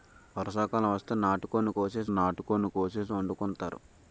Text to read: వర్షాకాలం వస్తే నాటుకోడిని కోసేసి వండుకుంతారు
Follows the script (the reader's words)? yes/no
no